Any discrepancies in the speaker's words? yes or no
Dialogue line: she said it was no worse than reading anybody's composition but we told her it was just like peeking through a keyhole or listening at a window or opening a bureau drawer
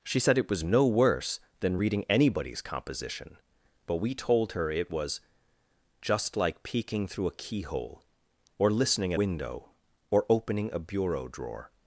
yes